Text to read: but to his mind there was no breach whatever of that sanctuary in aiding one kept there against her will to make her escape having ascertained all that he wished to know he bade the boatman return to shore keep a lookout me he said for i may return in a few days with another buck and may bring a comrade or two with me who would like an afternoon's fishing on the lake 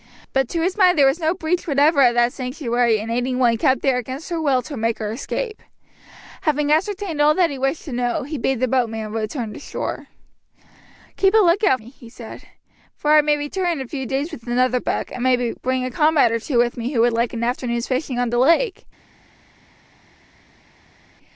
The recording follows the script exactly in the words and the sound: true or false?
true